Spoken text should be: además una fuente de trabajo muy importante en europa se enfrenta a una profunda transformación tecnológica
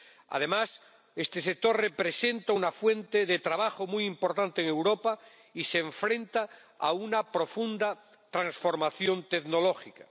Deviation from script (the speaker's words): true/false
true